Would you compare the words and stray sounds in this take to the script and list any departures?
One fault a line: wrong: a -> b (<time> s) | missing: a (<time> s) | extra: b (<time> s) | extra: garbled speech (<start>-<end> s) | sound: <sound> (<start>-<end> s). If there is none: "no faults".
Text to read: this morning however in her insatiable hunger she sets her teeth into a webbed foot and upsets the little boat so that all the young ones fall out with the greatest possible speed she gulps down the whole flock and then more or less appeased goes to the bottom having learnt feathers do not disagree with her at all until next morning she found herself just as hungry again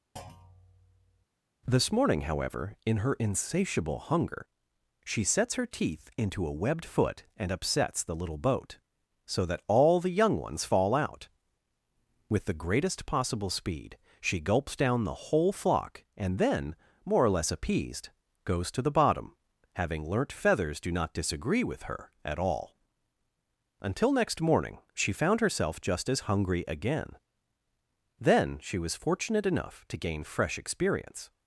sound: thud (0.2-1.3 s)
extra: then she was fortunate enough to gain fresh experience (28.2 s)